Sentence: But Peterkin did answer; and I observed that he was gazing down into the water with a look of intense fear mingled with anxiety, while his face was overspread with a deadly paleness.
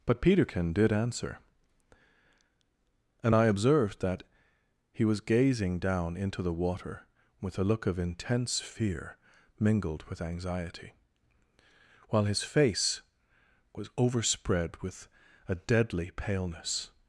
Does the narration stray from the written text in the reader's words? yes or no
no